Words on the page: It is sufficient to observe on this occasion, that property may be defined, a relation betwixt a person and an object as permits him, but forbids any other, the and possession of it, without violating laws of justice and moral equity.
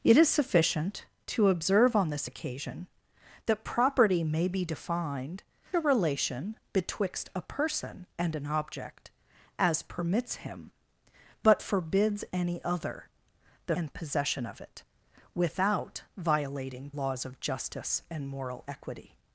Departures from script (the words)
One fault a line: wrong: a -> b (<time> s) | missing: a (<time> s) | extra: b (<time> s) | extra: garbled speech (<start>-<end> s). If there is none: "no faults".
no faults